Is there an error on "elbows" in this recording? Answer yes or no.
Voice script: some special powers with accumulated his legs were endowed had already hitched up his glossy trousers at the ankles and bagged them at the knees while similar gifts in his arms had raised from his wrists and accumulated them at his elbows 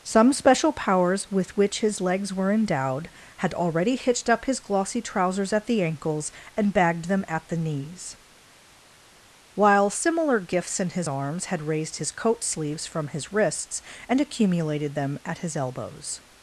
no